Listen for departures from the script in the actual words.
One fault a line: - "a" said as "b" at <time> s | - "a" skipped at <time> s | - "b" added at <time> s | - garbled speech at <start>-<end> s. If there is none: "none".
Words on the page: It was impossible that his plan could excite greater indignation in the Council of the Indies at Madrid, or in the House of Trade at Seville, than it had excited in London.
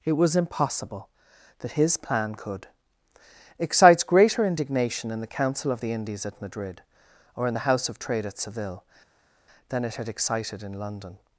- "excite" said as "excites" at 3.6 s